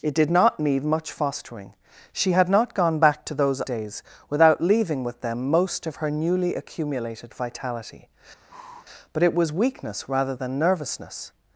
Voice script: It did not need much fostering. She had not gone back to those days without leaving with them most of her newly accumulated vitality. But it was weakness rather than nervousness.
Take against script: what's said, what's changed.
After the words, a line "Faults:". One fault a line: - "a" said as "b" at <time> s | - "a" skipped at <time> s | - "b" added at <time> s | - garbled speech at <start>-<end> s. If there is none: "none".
It did not need much fostering. She had not gone back to those days without leaving with them most of her newly accumulated vitality. But it was weakness rather than nervousness.
Faults:
none